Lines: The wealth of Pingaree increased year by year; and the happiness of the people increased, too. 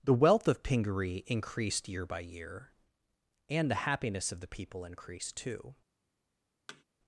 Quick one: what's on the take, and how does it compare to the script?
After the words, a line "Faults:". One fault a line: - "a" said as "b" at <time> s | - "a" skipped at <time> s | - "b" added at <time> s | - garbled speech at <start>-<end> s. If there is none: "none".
The wealth of Pingaree increased year by year; and the happiness of the people increased, too.
Faults:
none